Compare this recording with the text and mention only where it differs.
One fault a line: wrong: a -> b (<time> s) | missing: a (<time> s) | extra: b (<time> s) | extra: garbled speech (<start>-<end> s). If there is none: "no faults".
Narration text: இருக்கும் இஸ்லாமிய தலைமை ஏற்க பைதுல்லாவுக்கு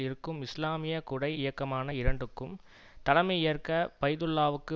extra: குடை இயக்கமான இரண்டுக்கும் (1.0 s)